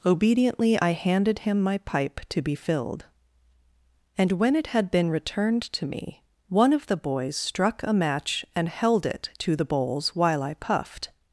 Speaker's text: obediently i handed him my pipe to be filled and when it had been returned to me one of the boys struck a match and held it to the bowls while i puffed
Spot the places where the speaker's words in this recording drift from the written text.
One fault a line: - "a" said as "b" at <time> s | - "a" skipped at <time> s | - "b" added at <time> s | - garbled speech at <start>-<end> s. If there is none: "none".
none